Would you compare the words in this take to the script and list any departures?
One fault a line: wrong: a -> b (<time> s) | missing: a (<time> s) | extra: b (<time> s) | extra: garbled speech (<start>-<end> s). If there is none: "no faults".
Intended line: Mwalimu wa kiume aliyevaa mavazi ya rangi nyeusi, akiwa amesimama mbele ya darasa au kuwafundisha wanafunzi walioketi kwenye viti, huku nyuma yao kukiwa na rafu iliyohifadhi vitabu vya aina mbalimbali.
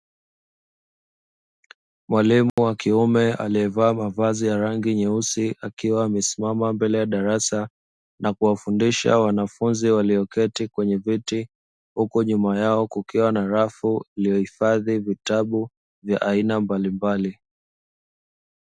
wrong: au -> na (8.2 s)